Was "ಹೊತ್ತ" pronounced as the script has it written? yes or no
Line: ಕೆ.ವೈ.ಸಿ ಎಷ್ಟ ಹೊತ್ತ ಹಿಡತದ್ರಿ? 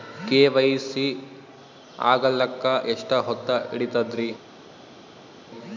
yes